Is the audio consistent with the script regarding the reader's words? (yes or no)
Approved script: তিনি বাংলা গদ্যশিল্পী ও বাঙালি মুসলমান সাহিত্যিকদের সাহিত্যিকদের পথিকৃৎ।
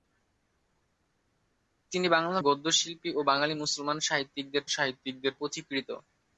yes